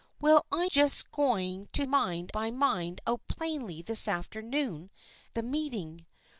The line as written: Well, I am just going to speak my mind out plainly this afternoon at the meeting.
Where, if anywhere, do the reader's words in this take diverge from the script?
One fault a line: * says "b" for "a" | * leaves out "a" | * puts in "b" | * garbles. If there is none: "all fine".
* leaves out "am"
* says "mind" for "speak"
* leaves out "at"